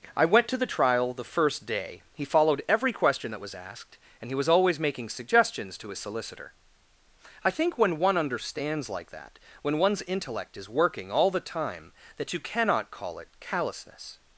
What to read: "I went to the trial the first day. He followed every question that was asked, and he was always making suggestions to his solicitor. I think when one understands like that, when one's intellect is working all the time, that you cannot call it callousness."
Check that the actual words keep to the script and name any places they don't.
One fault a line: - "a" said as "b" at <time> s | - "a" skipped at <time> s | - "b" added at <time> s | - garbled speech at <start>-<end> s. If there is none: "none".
none